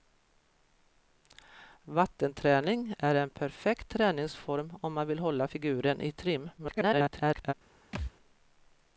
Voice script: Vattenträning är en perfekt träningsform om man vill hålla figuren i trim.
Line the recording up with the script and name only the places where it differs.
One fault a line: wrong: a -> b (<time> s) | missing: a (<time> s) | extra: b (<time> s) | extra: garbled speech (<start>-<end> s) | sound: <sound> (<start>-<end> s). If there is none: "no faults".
extra: garbled speech (6.6-7.5 s)
sound: thud (7.9-8.1 s)